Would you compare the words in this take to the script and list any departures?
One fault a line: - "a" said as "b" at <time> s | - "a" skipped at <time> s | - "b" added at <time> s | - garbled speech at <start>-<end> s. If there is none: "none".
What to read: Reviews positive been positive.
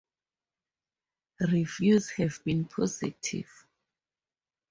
- "positive" said as "have" at 2.1 s